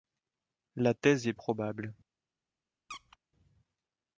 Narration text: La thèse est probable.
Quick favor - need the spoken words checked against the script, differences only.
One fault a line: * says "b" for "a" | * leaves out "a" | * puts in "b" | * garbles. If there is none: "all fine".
all fine